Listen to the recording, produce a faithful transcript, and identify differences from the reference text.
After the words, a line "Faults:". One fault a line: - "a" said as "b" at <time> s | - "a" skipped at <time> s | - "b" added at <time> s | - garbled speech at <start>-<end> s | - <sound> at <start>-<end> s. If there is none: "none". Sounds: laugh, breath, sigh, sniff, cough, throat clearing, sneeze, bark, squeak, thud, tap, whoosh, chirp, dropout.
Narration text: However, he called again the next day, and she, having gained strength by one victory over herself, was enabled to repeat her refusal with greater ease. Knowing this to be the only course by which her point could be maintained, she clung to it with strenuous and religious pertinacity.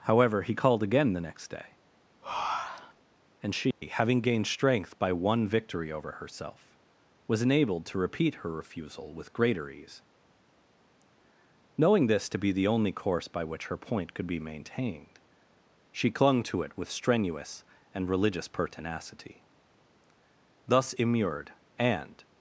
However, he called again the next day, and she, having gained strength by one victory over herself, was enabled to repeat her refusal with greater ease. Knowing this to be the only course by which her point could be maintained, she clung to it with strenuous and religious pertinacity. Thus immured and
Faults:
- breath at 2.2-3.0 s
- dropout at 3.7-3.8 s
- "Thus immured and" added at 20.7 s